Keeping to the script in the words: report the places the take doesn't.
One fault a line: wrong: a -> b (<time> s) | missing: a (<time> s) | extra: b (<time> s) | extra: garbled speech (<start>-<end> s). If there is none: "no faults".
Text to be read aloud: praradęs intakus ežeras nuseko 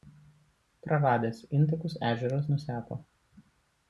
no faults